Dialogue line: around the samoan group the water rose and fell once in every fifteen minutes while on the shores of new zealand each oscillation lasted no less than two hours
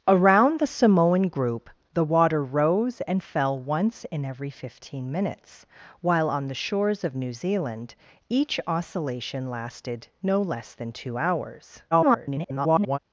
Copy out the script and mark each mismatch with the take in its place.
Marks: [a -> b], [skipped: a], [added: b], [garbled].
around the samoan group the water rose and fell once in every fifteen minutes while on the shores of new zealand each oscillation lasted no less than two hours [garbled]